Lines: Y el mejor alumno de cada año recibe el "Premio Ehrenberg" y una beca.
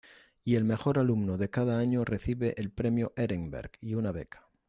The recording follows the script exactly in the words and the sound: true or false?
true